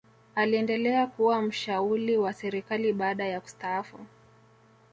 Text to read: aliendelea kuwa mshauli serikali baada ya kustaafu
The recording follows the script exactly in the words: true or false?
false